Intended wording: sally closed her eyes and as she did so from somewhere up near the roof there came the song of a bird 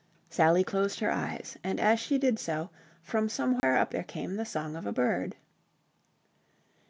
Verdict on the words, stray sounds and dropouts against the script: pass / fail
fail